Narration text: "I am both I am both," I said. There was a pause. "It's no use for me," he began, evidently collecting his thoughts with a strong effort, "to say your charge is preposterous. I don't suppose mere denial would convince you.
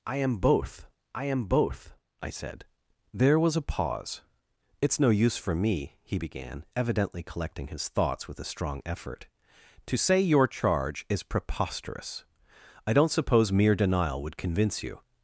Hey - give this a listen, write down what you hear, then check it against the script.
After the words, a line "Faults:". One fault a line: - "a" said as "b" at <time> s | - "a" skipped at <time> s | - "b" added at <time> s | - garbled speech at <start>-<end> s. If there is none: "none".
"I am both I am both," I said. There was a pause. "It's no use for me," he began, evidently collecting his thoughts with a strong effort, "to say your charge is preposterous. I don't suppose mere denial would convince you.
Faults:
none